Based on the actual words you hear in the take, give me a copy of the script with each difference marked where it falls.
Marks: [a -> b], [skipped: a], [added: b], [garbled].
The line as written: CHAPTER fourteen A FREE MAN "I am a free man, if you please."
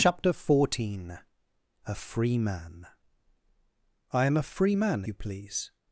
CHAPTER fourteen A FREE MAN "I am a free man, [skipped: if] you please."